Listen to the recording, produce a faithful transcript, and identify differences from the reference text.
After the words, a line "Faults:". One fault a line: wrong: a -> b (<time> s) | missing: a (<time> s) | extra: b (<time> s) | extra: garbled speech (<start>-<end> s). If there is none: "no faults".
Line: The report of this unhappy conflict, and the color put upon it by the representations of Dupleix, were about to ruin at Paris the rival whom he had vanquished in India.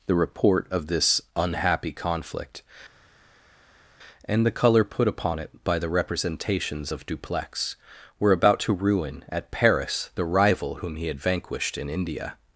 The report of this unhappy conflict, and the color put upon it by the representations of Dupleix, were about to ruin at Paris the rival whom he had vanquished in India.
Faults:
no faults